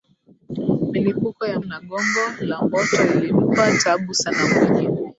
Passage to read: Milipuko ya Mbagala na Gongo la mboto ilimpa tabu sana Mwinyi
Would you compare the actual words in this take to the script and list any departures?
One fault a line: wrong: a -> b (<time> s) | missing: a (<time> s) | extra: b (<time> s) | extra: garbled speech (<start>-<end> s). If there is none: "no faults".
missing: Mbagala (1.6 s)